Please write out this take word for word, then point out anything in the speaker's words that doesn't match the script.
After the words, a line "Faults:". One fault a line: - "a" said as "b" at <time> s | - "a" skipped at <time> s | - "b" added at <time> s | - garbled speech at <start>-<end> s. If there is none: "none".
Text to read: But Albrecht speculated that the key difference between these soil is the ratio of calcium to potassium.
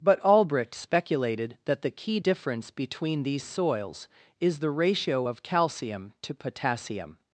But Albrecht speculated that the key difference between these soils is the ratio of calcium to potassium.
Faults:
- "soil" said as "soils" at 3.4 s